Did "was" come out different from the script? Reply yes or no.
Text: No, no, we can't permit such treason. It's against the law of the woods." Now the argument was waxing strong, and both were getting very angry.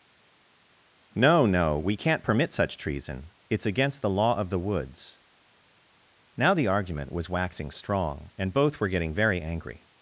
no